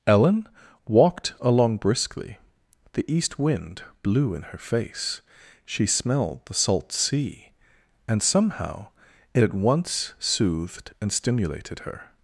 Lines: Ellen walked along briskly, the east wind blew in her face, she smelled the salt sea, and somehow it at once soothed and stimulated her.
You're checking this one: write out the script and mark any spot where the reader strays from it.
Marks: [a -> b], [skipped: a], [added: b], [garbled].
Ellen walked along briskly, the east wind blew in her face, she smelled the salt sea, and somehow it at once soothed and stimulated her.